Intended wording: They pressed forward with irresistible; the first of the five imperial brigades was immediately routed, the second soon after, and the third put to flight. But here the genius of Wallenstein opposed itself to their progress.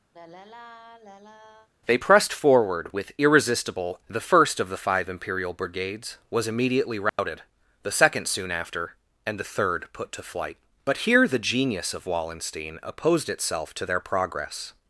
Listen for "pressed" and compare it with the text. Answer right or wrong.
right